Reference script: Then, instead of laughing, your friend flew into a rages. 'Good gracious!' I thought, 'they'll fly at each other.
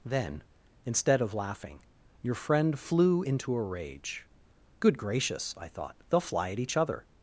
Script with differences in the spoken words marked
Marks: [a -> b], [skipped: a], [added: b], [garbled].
Then, instead of laughing, your friend flew into a [rages. -> rage] 'Good gracious!' I thought, 'they'll fly at each other.